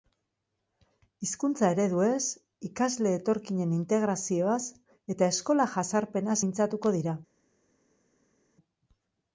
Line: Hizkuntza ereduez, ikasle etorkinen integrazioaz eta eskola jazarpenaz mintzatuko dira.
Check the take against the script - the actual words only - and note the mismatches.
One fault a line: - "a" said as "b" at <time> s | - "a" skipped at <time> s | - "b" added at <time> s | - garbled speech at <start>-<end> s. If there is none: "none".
none